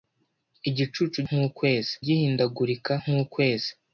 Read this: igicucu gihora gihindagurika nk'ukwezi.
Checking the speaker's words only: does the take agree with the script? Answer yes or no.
no